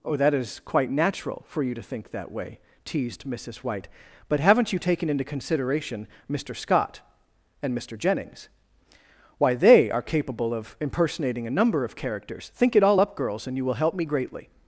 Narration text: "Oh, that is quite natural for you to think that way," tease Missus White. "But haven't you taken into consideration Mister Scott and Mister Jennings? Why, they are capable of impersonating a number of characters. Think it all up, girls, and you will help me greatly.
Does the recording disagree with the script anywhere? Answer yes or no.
yes